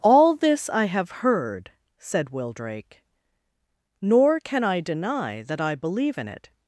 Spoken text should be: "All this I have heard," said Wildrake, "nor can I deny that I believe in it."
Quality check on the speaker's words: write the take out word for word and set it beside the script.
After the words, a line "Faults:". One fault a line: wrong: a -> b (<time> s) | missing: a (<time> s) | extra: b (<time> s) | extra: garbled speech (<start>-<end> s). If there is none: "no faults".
"All this I have heard," said Wildrake, "nor can I deny that I believe in it."
Faults:
no faults